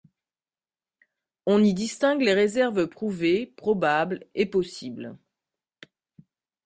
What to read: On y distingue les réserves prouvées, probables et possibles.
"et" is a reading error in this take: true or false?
false